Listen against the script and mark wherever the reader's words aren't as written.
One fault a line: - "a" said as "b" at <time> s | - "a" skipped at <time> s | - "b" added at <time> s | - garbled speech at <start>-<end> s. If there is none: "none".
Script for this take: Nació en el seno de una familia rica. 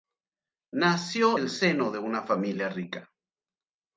- "en" skipped at 1.4 s